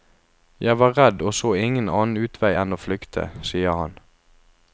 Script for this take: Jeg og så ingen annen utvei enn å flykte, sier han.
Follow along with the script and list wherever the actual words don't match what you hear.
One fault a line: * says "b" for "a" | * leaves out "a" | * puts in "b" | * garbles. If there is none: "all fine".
* puts in "var redd"